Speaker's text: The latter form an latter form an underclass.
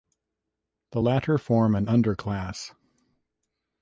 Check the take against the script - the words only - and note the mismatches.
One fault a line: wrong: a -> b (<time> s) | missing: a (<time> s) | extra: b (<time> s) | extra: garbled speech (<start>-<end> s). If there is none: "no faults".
missing: latter form an (1.9 s)